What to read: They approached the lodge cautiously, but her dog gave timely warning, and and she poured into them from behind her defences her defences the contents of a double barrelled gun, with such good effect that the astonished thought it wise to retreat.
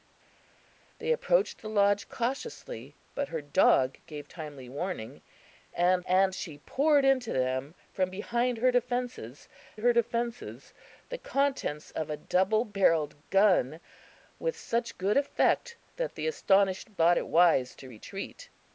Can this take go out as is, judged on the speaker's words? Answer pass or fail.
pass